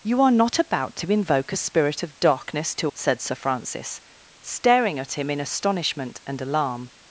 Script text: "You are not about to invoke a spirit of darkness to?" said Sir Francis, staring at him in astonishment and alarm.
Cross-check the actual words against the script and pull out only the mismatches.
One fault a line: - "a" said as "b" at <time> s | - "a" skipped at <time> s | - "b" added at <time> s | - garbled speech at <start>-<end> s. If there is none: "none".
none